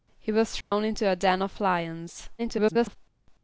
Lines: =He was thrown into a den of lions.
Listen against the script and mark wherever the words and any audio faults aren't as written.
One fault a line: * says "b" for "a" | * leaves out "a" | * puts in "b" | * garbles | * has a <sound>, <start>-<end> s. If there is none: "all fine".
* has a dropout, 0.6-0.7 s
* garbles